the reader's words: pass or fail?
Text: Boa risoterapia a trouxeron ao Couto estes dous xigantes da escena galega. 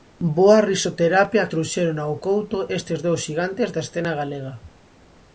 pass